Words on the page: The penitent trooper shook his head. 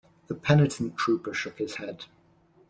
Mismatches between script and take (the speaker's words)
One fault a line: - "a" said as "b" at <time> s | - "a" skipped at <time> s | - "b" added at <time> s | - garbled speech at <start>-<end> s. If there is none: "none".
none